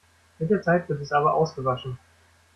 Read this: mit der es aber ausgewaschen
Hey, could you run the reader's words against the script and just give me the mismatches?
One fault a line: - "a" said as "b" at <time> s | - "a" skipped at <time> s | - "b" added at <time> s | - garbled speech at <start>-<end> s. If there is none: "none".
- "zeit wird" added at 0.6 s